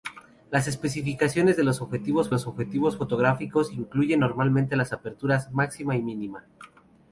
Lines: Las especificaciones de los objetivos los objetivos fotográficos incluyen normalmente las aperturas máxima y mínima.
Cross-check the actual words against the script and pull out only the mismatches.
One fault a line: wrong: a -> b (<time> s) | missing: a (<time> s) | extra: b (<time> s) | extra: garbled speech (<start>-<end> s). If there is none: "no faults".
no faults